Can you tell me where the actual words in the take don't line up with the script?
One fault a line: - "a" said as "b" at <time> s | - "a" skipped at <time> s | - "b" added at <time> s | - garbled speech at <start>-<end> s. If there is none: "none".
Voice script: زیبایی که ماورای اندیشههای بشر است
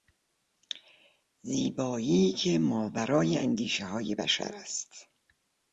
none